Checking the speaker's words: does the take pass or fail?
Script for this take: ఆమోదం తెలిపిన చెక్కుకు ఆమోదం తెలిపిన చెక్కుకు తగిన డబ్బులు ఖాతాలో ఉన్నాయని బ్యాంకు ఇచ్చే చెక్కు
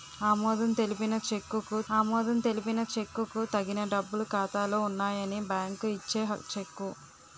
pass